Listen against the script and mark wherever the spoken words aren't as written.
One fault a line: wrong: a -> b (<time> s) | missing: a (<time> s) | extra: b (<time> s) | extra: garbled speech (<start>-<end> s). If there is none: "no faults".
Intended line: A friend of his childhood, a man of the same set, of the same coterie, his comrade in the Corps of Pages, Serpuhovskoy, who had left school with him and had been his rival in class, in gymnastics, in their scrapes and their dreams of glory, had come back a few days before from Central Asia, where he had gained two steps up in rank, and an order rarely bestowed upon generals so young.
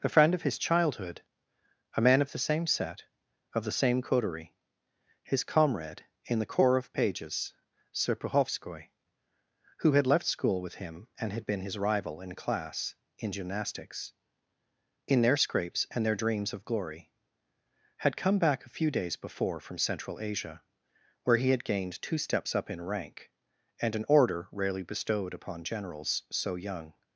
no faults